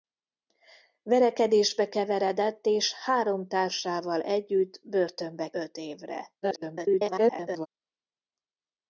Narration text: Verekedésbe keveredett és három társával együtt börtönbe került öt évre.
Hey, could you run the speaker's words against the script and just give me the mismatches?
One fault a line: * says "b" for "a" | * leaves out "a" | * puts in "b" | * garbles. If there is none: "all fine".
* leaves out "került"
* garbles